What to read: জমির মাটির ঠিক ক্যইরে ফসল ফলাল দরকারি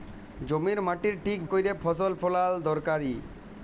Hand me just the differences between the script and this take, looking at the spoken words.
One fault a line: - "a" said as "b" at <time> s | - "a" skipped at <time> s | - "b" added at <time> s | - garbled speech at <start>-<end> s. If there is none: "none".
none